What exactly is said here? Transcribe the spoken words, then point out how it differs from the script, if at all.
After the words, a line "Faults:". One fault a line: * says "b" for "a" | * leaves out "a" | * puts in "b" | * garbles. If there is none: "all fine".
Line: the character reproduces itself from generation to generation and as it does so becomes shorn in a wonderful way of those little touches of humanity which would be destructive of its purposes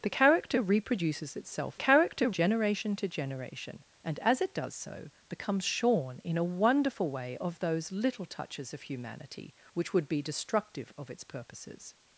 the character reproduces itself character generation to generation and as it does so becomes shorn in a wonderful way of those little touches of humanity which would be destructive of its purposes
Faults:
* says "character" for "from"